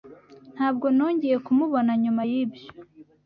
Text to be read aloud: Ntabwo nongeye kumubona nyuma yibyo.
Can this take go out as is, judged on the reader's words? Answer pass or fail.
pass